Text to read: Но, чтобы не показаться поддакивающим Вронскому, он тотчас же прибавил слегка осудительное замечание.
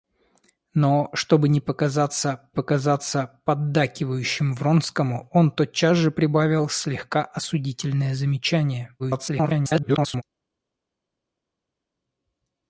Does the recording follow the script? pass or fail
fail